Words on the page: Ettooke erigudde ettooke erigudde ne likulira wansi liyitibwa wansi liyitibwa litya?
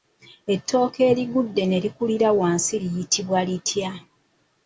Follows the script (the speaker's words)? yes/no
no